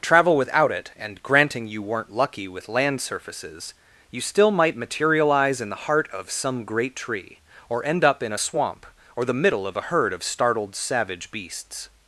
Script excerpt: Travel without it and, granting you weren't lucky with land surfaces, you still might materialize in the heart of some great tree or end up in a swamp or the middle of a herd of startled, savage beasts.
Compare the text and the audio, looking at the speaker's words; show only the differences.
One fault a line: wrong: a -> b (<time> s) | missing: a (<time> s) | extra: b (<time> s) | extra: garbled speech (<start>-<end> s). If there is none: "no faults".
no faults